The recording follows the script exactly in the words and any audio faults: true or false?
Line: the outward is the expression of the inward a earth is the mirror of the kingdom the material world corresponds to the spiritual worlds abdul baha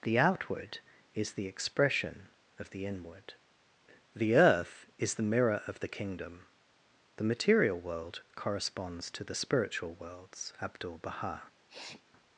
false